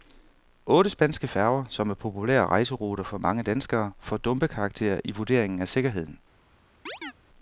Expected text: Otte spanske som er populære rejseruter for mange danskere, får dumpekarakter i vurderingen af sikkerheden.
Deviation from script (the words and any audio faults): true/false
true